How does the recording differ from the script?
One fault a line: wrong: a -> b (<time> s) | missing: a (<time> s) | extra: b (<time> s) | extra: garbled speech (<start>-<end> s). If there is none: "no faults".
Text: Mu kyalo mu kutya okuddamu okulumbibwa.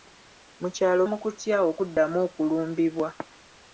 no faults